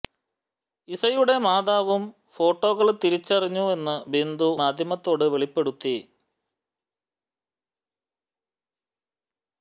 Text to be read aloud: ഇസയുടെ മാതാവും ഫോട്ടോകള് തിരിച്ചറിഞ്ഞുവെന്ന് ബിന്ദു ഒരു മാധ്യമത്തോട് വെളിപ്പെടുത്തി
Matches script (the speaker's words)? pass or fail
fail